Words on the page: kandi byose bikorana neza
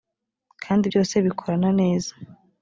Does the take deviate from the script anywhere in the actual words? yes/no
no